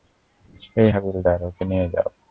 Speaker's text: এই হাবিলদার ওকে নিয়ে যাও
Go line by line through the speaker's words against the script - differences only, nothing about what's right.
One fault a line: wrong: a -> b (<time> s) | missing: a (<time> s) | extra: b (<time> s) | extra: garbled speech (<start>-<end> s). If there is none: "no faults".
no faults